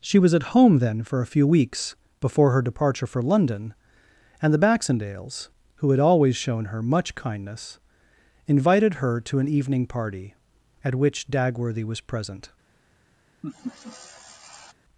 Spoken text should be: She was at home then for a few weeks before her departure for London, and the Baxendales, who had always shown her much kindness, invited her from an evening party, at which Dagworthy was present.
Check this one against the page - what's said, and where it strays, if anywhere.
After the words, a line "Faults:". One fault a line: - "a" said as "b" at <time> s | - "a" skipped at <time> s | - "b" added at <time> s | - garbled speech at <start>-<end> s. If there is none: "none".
She was at home then for a few weeks before her departure for London, and the Baxendales, who had always shown her much kindness, invited her to an evening party, at which Dagworthy was present.
Faults:
- "from" said as "to" at 9.2 s